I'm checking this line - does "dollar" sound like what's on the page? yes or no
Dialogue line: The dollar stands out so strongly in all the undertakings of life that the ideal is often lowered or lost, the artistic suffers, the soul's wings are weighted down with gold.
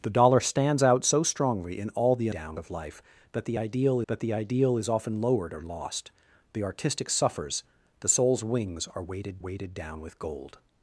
yes